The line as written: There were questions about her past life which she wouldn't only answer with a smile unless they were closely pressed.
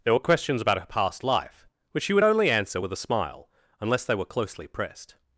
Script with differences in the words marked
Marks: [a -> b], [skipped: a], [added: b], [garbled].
There were questions about her past life which she [wouldn't -> would] only answer with a smile unless they were closely pressed.